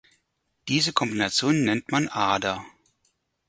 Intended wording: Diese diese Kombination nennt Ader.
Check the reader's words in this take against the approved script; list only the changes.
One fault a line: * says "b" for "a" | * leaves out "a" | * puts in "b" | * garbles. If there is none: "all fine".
* leaves out "diese"
* puts in "man"